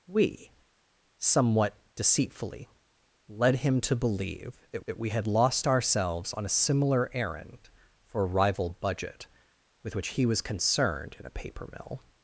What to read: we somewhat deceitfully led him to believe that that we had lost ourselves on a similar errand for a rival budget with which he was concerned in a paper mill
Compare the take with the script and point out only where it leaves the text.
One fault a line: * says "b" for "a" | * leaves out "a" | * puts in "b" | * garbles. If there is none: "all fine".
all fine